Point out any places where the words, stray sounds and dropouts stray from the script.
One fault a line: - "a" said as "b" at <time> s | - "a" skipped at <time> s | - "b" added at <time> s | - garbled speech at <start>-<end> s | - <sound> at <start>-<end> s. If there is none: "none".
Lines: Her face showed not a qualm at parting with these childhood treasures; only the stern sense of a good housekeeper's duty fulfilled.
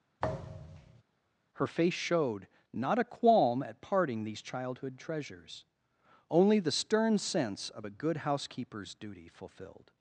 - thud at 0.2-1.0 s
- "with" skipped at 4.2 s